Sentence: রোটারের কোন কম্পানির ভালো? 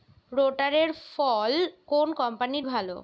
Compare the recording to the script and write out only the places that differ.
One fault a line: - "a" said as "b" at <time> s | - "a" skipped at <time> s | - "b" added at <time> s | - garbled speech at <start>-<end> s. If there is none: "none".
- "ফল" added at 1.1 s